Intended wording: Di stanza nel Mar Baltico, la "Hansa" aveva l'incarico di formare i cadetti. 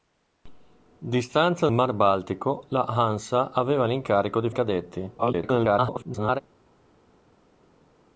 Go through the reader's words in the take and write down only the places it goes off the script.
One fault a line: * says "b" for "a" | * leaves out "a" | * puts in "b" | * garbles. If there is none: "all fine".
* leaves out "nel"
* leaves out "formare"
* garbles